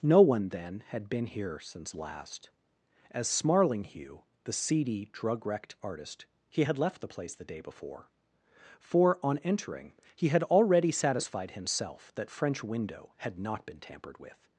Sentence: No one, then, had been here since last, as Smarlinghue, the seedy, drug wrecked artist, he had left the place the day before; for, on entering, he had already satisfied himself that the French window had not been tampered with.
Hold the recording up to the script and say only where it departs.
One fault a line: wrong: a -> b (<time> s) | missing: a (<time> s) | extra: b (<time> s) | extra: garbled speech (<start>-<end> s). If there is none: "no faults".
missing: the (12.3 s)